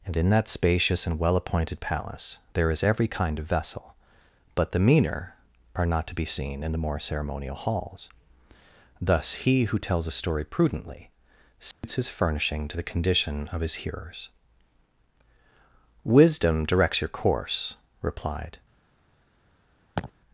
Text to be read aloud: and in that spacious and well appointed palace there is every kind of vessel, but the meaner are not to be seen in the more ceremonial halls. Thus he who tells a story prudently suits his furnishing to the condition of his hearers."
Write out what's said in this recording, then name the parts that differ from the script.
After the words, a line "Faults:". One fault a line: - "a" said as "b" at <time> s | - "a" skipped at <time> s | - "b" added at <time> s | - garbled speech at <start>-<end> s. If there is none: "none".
and in that spacious and well appointed palace there is every kind of vessel, but the meaner are not to be seen in the more ceremonial halls. Thus he who tells a story prudently suits his furnishing to the condition of his hearers." "Wisdom directs your course," replied
Faults:
- "Wisdom directs your course replied" added at 16.1 s